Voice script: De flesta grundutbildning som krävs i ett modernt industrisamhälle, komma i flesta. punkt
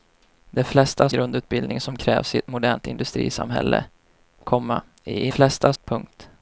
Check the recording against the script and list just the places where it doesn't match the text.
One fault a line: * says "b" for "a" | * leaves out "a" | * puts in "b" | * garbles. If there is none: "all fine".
all fine